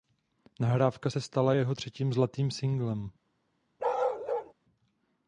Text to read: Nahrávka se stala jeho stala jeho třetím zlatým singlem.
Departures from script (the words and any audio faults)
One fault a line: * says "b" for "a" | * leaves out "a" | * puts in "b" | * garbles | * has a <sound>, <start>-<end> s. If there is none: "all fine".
* leaves out "stala jeho"
* has a bark, 3.8-4.5 s